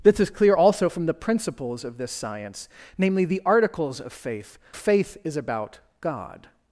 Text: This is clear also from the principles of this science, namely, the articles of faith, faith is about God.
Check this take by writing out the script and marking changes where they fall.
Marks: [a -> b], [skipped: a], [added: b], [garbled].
This is clear also from the principles of this science, namely, the articles of faith, faith is about God.